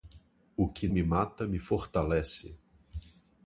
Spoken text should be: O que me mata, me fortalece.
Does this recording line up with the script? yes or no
yes